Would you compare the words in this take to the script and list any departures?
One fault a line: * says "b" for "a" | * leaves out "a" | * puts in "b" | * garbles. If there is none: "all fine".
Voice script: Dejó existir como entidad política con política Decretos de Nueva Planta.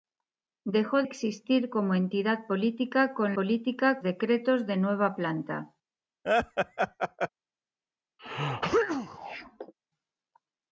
all fine